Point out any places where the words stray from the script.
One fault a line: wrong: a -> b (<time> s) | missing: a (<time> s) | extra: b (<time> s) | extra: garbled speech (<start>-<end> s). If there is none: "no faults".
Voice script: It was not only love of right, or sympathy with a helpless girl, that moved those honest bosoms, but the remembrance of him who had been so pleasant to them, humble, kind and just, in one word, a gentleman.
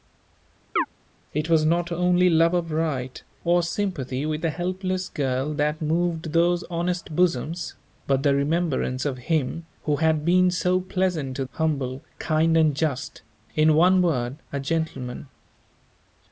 missing: them (11.5 s)